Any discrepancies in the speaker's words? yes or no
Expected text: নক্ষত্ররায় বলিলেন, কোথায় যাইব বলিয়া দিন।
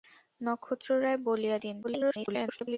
yes